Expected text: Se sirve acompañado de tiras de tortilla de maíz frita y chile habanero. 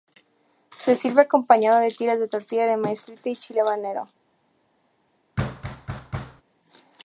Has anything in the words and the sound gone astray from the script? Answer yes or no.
yes